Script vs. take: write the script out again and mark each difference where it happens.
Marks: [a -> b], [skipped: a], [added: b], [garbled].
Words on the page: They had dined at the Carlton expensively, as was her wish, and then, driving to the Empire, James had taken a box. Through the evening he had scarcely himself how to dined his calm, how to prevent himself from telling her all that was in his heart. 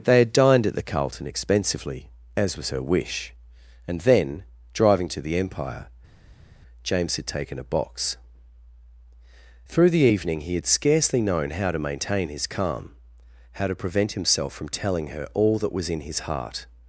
They had dined at the Carlton expensively, as was her wish, and then, driving to the Empire, James had taken a box. Through the evening he had scarcely [himself -> known] how to [dined -> maintain] his calm, how to prevent himself from telling her all that was in his heart.